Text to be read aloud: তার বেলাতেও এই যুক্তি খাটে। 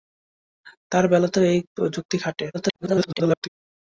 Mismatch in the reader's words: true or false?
true